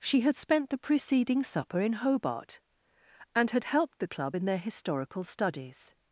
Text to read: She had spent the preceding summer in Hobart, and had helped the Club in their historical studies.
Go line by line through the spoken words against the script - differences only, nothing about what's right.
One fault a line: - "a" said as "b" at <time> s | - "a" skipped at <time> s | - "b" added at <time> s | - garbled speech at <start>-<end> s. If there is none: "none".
- "summer" said as "supper" at 1.4 s